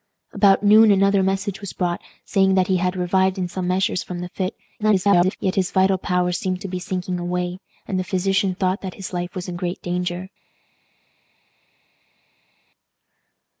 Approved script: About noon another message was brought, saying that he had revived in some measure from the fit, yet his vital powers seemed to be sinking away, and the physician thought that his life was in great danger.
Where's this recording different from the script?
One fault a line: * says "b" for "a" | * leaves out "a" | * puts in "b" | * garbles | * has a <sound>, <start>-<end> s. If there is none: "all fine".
* garbles